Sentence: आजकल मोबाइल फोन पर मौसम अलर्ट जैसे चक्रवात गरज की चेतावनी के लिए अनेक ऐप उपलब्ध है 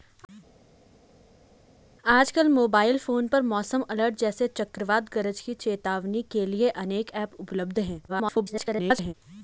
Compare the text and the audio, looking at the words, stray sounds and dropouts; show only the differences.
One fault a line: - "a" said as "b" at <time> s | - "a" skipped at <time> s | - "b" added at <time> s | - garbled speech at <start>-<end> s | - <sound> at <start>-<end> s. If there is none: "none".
- garbled speech at 8.1-9.1 s